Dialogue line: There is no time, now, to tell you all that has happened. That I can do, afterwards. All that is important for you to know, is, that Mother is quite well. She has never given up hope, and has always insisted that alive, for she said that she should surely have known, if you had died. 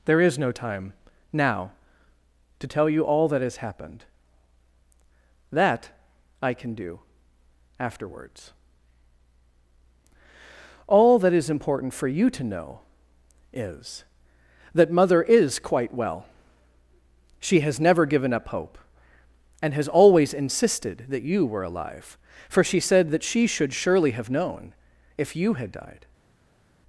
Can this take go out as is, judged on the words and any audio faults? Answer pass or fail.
fail